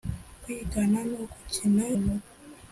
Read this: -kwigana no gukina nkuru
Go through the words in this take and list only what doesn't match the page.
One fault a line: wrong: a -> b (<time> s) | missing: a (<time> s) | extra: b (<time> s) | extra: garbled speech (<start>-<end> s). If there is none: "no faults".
no faults